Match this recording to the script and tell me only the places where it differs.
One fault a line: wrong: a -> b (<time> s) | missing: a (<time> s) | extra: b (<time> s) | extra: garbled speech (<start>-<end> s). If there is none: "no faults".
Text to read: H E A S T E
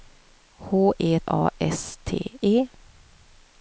no faults